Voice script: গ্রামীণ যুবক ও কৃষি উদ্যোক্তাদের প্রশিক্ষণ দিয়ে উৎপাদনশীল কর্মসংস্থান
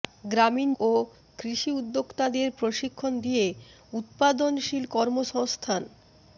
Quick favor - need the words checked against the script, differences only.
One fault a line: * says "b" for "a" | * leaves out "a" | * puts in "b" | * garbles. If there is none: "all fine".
* leaves out "যুবক"